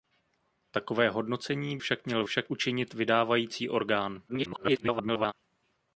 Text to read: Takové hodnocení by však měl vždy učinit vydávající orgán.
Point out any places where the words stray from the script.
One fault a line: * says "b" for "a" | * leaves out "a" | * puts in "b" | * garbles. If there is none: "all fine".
* leaves out "by"
* says "však" for "vždy"
* garbles